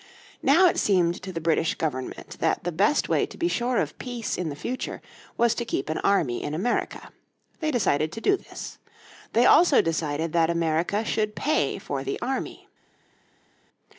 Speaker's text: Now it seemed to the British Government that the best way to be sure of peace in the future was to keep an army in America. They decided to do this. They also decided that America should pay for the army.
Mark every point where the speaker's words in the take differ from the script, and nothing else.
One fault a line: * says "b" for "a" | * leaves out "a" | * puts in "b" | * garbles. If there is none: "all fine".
all fine